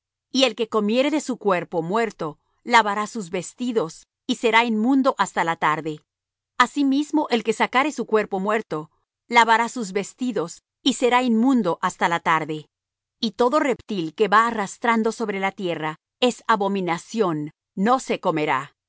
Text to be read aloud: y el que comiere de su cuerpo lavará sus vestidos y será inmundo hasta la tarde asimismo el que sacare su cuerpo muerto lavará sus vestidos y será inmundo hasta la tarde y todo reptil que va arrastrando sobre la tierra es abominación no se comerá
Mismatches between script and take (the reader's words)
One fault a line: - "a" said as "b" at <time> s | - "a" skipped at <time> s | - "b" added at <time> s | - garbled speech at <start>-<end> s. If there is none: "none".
- "muerto" added at 1.8 s